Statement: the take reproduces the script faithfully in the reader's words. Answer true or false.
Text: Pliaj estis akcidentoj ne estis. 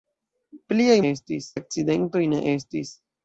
true